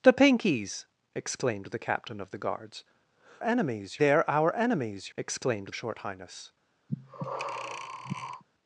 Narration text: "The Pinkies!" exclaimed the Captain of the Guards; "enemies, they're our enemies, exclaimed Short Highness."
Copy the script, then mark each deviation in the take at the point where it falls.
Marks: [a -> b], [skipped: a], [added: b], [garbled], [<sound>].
"The Pinkies!" exclaimed the Captain of the Guards; "enemies, they're our enemies, exclaimed Short Highness." [breath]